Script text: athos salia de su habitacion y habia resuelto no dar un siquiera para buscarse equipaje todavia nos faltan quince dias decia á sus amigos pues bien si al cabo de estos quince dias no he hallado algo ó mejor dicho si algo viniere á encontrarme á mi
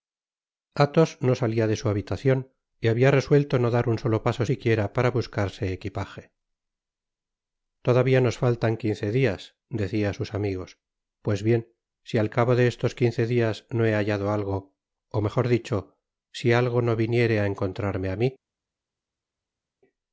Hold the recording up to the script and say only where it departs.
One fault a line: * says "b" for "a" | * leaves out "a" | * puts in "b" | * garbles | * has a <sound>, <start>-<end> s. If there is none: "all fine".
* puts in "no"
* puts in "solo paso"
* puts in "no"